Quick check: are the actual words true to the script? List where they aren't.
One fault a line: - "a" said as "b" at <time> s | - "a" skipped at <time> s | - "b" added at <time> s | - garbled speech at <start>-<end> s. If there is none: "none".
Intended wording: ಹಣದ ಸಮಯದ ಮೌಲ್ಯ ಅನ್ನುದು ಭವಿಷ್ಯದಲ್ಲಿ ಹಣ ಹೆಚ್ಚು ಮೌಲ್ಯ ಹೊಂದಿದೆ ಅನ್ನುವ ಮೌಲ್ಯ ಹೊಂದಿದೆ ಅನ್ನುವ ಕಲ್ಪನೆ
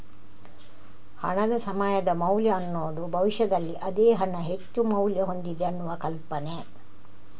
- "ಅದೇ" added at 3.8 s
- "ಮೌಲ್ಯ ಹೊಂದಿದೆ ಅನ್ನುವ" skipped at 5.9 s